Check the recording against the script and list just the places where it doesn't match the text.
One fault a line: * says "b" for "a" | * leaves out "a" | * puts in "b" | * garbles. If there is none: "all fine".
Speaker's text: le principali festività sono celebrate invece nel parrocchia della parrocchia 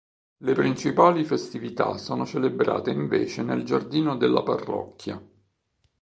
* says "giardino" for "parrocchia"